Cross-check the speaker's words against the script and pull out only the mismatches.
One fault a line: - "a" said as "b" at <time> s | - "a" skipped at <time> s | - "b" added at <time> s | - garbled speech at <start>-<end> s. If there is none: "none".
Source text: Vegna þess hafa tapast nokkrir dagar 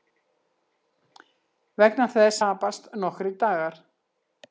- "hafa" skipped at 2.4 s